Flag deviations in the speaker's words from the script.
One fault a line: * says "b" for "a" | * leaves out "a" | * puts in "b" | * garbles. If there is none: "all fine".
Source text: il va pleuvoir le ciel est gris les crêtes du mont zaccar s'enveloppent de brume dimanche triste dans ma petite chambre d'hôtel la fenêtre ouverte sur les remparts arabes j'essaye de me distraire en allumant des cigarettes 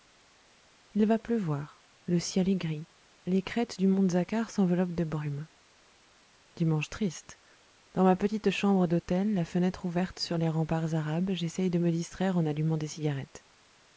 all fine